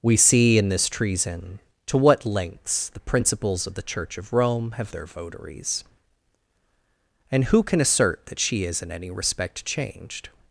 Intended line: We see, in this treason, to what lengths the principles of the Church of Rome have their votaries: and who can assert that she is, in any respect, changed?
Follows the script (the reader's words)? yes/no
yes